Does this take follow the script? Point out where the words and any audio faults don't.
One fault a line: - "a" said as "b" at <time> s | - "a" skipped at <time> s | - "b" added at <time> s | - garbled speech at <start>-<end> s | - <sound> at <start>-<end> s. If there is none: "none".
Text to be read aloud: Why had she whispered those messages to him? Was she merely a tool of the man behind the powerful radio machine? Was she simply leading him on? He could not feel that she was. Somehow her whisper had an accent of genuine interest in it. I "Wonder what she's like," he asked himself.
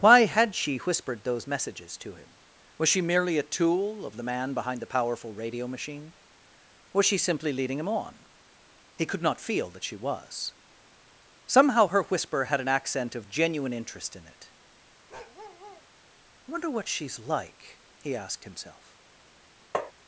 - bark at 15.1-15.9 s
- tap at 19.7-19.9 s